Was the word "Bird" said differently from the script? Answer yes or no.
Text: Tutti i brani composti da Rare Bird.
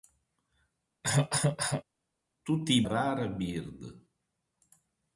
no